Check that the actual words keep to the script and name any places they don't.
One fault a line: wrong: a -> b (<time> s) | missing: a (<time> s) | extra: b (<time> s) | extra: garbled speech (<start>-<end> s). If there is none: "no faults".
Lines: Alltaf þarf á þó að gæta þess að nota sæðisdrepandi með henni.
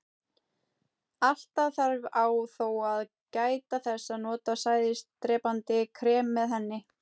extra: krem (6.0 s)